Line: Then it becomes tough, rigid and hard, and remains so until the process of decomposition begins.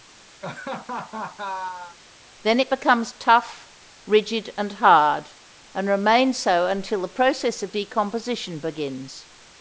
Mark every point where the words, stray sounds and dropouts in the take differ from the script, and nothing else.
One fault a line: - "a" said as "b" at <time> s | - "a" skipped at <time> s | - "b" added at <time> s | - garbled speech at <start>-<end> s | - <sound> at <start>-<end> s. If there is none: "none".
- laugh at 0.4-2.0 s